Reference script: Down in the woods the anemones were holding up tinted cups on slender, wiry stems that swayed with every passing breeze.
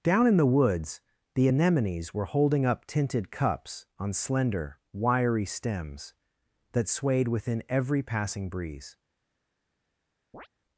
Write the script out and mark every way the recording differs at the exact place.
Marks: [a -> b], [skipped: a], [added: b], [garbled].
Down in the woods the anemones were holding up tinted cups on slender, wiry stems that swayed [with -> within] every passing breeze.